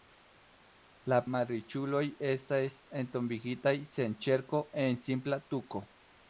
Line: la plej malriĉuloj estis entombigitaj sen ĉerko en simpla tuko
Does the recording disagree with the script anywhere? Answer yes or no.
yes